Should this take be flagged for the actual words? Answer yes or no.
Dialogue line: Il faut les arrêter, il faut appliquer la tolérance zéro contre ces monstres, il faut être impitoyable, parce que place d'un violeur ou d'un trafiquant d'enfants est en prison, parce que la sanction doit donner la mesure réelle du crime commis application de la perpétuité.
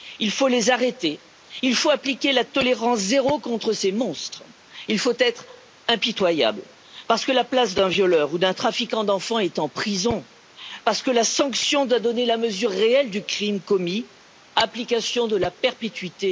yes